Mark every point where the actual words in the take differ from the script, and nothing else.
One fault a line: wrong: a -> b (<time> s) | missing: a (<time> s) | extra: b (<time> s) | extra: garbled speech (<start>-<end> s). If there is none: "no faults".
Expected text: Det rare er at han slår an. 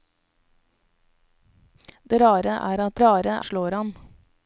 wrong: han -> rare (3.0 s)